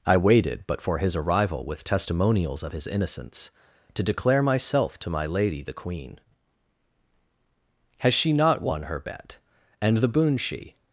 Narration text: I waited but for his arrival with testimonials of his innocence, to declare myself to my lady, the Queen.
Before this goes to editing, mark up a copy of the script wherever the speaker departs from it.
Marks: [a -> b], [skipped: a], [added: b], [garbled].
I waited but for his arrival with testimonials of his innocence, to declare myself to my lady, the Queen. [added: Has she not won her bet And the boon she]